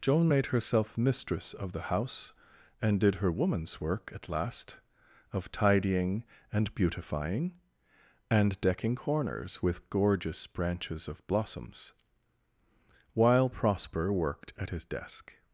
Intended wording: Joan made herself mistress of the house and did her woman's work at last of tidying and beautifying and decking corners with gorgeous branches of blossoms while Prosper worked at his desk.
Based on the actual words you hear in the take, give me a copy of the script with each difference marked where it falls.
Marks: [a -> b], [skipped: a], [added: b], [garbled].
Joan made herself mistress of the house and did her woman's work at last of tidying and beautifying and decking corners with gorgeous branches of blossoms while Prosper worked at his desk.